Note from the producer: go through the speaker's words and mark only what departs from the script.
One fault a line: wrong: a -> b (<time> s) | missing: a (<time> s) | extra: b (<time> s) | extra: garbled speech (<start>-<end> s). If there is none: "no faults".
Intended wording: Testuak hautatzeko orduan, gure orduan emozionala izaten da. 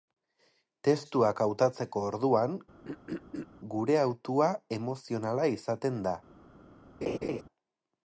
wrong: orduan -> hautua (4.0 s)